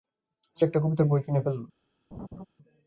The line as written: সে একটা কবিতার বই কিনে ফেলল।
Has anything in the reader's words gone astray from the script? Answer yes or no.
no